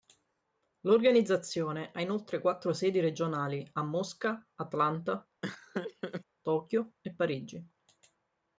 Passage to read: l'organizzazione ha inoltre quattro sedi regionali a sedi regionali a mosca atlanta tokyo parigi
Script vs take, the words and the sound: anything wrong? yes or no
yes